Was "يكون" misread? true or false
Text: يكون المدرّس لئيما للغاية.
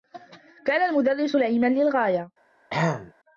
true